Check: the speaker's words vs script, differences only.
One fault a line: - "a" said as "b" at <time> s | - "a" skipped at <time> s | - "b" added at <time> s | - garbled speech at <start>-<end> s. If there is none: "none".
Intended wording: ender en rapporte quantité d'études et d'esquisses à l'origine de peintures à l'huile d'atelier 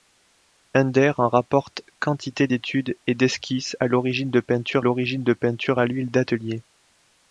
- "l'origine de peintures" added at 4.8 s